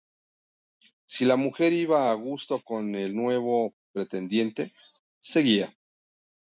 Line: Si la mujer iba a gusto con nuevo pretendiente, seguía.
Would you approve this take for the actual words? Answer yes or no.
no